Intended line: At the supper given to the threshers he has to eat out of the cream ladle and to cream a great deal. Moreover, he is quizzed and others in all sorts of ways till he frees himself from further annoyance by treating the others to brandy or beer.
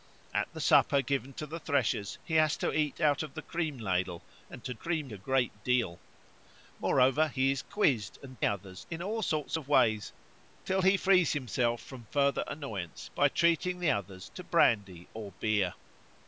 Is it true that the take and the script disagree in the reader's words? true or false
false